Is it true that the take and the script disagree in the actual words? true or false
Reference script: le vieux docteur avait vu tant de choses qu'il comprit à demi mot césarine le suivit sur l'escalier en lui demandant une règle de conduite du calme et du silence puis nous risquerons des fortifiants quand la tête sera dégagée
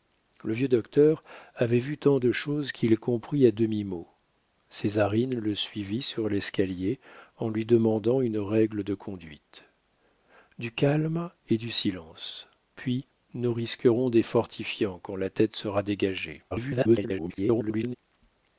true